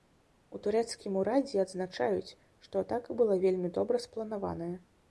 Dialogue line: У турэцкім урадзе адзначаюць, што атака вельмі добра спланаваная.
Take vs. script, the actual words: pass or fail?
fail